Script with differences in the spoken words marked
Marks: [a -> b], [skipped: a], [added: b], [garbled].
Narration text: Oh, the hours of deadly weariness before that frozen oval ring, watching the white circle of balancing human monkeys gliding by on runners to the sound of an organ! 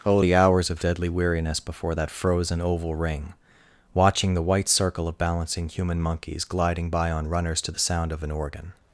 Oh, the hours of deadly weariness before that frozen oval ring, watching the white circle of balancing human monkeys gliding by on runners to the sound of an organ!